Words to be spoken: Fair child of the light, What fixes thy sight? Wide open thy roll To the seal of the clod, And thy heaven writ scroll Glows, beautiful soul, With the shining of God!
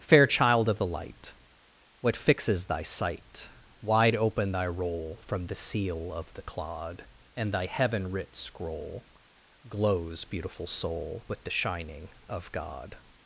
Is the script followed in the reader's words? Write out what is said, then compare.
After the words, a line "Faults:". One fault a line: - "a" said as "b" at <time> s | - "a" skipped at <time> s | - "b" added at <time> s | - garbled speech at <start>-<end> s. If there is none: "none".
Fair child of the light, What fixes thy sight? Wide open thy roll From the seal of the clod, And thy heaven writ scroll Glows, beautiful soul, With the shining of God!
Faults:
- "To" said as "From" at 5.2 s